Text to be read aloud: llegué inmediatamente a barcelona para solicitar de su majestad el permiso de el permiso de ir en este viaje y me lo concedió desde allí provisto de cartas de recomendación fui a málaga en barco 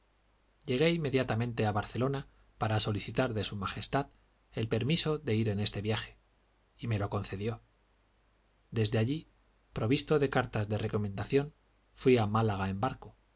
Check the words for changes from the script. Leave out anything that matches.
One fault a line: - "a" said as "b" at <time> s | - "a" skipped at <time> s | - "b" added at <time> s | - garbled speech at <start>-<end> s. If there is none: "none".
- "el permiso de" skipped at 5.3 s